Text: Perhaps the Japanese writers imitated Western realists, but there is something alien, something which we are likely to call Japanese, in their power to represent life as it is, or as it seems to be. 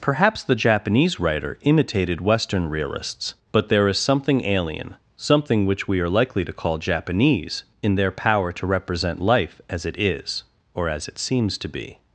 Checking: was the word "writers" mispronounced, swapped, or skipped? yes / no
yes